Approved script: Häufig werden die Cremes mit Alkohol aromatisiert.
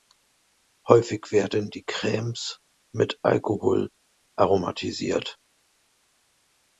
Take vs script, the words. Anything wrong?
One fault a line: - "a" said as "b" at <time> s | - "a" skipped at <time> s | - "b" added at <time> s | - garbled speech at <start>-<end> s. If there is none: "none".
none